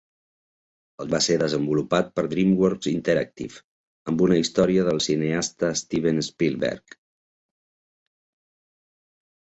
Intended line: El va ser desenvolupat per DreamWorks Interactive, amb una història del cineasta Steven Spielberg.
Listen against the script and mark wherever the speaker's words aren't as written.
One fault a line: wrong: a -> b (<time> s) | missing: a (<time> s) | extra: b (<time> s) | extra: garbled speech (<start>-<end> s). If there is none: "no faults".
no faults